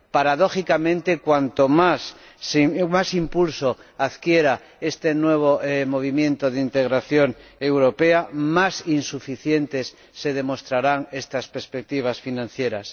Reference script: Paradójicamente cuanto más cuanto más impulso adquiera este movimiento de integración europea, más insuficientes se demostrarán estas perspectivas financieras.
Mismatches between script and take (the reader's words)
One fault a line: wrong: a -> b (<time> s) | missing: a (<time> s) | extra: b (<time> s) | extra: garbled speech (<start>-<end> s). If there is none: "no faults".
missing: cuanto más (2.1 s)
extra: nuevo (5.1 s)